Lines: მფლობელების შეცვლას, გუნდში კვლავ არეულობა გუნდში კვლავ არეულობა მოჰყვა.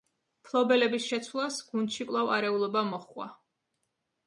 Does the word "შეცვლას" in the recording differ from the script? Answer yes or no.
no